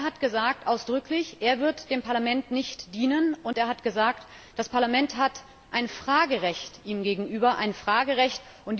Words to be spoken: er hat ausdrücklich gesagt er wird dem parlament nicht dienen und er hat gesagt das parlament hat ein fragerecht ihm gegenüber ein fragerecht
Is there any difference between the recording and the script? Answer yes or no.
no